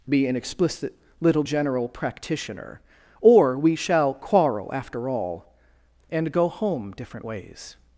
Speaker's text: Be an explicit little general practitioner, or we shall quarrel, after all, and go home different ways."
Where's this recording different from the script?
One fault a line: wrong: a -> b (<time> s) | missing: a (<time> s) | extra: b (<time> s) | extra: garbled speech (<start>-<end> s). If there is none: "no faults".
no faults